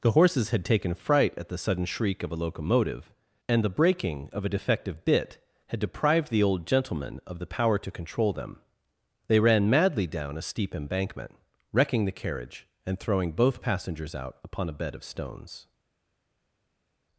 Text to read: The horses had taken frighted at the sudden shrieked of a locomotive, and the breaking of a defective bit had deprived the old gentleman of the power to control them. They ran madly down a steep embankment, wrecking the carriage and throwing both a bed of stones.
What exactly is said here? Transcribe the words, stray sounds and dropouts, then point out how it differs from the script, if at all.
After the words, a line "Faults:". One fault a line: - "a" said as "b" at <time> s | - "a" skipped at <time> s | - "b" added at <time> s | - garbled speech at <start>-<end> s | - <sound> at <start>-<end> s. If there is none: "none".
The horses had taken fright at the sudden shriek of a locomotive, and the breaking of a defective bit had deprived the old gentleman of the power to control them. They ran madly down a steep embankment, wrecking the carriage and throwing both passengers out upon a bed of stones.
Faults:
- "frighted" said as "fright" at 0.9 s
- "shrieked" said as "shriek" at 1.9 s
- "passengers out upon" added at 13.6 s